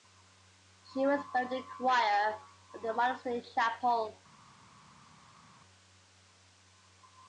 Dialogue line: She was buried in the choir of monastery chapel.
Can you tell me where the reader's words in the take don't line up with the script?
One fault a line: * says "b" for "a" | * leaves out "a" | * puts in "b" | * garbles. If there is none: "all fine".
* puts in "the"